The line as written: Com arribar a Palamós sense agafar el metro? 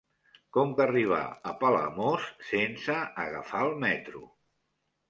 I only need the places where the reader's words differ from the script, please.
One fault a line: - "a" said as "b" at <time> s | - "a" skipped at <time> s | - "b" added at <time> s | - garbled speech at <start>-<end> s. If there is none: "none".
none